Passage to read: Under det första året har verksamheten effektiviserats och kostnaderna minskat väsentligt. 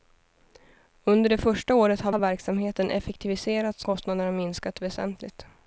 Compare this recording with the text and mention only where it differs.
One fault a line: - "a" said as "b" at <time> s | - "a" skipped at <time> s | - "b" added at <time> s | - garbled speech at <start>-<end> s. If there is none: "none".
- "har" added at 2.1 s
- "och" skipped at 3.8 s